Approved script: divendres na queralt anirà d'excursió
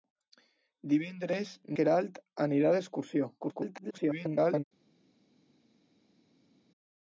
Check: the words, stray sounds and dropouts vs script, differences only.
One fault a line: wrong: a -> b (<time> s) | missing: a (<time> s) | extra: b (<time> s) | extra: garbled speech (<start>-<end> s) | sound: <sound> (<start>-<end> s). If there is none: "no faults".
missing: na (1.5 s)
extra: garbled speech (3.4-4.6 s)